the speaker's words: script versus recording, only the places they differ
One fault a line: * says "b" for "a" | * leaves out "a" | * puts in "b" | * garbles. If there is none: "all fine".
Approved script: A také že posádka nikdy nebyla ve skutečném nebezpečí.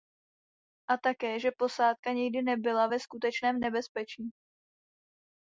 all fine